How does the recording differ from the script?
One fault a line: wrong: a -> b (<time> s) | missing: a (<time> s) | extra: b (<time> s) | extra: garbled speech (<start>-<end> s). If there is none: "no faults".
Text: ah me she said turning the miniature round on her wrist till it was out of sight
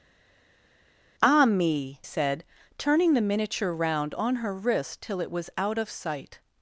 missing: she (2.0 s)